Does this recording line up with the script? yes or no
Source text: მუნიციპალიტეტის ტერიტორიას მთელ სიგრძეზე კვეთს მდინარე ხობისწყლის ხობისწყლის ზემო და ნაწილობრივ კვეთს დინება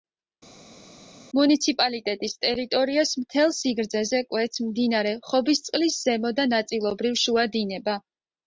no